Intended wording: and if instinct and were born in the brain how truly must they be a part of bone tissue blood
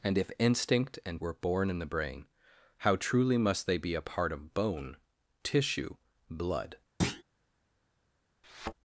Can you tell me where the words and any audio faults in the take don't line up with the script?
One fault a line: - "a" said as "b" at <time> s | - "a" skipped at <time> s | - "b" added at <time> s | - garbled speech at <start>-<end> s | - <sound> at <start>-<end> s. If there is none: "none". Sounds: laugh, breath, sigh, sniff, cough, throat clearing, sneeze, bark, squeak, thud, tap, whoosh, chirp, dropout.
- thud at 7.0-7.2 s
- thud at 8.4-8.7 s